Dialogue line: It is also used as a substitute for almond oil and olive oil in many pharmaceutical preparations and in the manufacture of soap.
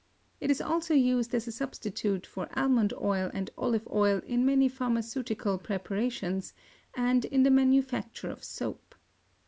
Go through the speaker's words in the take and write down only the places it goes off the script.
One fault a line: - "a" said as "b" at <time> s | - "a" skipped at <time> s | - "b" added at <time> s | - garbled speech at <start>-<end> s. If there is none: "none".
none